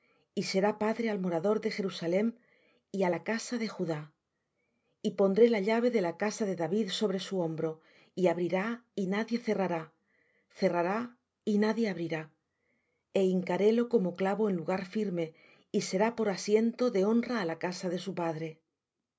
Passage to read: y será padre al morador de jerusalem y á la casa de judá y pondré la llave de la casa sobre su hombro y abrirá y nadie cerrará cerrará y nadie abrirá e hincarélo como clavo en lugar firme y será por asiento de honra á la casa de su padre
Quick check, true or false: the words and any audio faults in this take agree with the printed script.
false